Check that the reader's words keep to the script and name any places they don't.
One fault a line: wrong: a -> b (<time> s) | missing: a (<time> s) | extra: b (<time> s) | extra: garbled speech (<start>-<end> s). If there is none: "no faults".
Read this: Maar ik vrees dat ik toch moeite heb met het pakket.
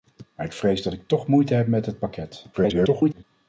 extra: garbled speech (2.5-3.2 s)